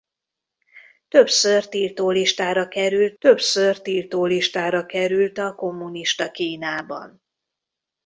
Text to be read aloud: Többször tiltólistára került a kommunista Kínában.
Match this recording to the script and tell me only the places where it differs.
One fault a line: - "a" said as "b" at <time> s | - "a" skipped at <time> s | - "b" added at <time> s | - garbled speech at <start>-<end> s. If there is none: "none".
- "többször tiltólistára került" added at 3.2 s